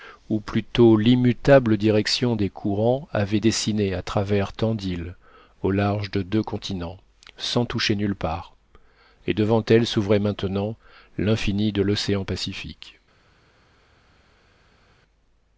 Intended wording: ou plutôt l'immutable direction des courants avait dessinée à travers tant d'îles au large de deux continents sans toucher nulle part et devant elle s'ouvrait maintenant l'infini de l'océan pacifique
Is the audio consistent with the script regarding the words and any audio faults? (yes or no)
yes